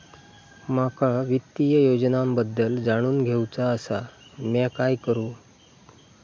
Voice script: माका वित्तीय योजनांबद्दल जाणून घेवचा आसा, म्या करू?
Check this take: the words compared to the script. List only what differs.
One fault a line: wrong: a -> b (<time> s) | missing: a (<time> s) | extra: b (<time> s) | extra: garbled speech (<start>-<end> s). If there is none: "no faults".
extra: काय (4.8 s)